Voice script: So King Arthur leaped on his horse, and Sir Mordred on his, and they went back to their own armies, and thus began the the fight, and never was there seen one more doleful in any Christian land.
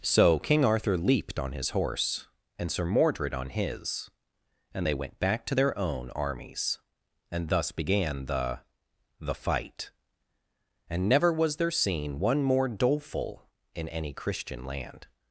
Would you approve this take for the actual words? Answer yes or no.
yes